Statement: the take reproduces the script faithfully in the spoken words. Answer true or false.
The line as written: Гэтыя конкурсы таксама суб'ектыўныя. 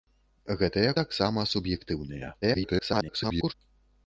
false